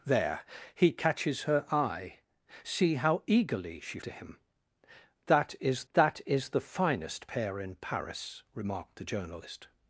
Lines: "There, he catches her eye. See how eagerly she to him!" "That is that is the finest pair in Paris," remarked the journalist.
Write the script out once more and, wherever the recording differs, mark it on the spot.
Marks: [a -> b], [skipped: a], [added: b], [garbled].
"There, he catches her eye. See how eagerly she to him!" "That is that is the finest pair in Paris," remarked the journalist.